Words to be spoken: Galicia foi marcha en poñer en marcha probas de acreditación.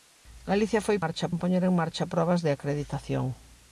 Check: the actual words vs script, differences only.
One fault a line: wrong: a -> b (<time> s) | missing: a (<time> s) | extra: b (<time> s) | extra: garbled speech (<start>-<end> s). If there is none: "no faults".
no faults